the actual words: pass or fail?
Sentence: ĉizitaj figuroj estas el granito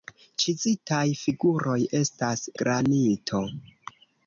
fail